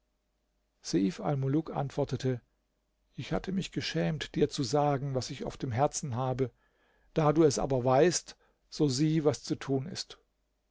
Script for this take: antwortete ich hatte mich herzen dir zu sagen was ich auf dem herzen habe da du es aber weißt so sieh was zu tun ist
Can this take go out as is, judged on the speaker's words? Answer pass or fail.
fail